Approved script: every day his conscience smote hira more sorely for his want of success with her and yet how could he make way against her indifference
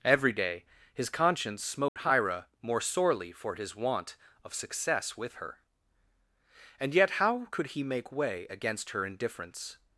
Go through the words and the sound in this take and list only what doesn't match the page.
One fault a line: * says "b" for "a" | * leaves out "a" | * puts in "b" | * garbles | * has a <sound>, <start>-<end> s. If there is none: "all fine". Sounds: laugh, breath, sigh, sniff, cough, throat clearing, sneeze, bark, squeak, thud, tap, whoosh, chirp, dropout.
* has a dropout, 1.9-2.0 s